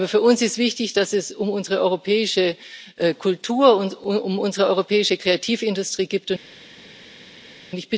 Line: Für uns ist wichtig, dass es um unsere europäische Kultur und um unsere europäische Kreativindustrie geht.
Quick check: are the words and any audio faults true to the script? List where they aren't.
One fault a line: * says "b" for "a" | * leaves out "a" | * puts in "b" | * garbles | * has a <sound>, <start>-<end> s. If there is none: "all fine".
all fine